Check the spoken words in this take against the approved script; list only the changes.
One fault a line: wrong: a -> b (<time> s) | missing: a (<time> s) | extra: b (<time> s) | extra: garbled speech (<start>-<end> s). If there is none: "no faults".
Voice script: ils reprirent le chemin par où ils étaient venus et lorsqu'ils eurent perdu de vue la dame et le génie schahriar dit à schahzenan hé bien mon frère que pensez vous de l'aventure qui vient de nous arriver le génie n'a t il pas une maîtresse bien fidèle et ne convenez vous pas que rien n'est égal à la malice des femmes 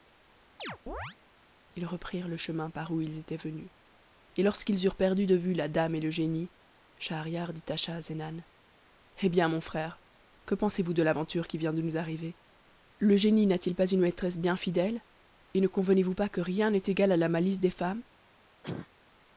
no faults